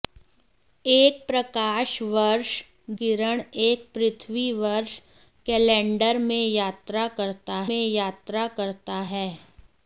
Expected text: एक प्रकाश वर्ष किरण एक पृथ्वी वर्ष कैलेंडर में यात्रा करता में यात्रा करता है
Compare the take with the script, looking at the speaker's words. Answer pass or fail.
pass